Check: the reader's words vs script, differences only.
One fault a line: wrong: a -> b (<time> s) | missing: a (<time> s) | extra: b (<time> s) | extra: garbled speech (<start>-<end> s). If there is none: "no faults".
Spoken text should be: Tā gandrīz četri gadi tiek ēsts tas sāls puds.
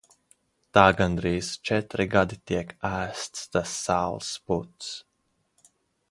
no faults